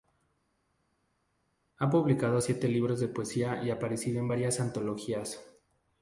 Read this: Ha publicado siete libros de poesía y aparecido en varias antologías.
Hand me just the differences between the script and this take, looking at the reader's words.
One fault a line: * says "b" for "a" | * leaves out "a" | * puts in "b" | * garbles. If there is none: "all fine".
all fine